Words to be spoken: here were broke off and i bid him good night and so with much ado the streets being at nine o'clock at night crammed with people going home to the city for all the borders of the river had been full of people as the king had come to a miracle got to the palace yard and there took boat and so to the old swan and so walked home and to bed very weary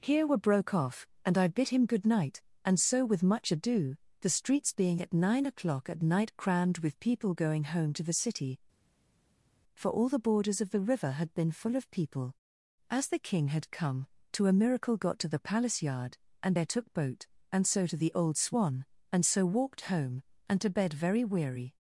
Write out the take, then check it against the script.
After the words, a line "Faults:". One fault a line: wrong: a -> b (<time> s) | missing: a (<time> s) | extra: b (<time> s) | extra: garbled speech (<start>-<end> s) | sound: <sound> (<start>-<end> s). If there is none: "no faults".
here were broke off and i bid him good night and so with much ado the streets being at nine o'clock at night crammed with people going home to the city for all the borders of the river had been full of people as the king had come to a miracle got to the palace yard and there took boat and so to the old swan and so walked home and to bed very weary
Faults:
no faults